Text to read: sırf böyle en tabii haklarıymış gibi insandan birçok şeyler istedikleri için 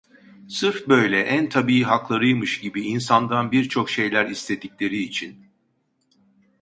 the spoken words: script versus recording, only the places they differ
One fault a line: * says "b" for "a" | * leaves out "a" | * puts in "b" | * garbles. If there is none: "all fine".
all fine